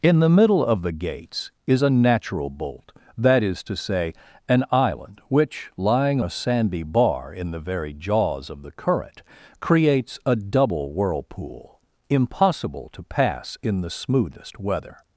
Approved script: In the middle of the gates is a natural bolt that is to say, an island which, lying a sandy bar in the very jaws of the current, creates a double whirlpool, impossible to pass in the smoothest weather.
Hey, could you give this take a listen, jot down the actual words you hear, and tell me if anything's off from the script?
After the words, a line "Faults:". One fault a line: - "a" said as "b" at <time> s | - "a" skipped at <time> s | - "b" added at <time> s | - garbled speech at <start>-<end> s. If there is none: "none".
In the middle of the gates is a natural bolt that is to say, an island which, lying a sandy bar in the very jaws of the current, creates a double whirlpool, impossible to pass in the smoothest weather.
Faults:
none